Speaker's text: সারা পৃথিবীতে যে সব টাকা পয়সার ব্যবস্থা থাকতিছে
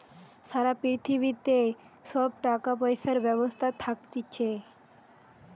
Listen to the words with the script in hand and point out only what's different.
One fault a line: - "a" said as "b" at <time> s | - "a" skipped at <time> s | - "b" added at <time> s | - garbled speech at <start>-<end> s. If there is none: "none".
- "যে" skipped at 1.6 s